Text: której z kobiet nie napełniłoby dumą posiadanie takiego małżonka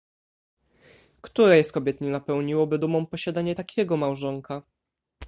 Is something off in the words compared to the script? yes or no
no